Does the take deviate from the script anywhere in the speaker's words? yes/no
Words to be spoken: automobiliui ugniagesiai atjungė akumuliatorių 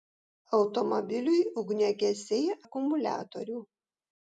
yes